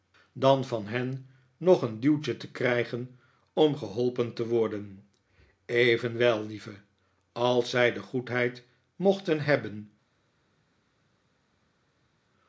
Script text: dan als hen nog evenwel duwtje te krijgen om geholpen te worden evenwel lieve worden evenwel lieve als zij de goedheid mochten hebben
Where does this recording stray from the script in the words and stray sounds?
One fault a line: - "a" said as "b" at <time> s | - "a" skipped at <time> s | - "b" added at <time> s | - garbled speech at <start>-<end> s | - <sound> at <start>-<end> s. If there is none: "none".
- "als" said as "van" at 0.7 s
- "evenwel" said as "een" at 1.8 s
- "worden evenwel lieve" skipped at 6.7 s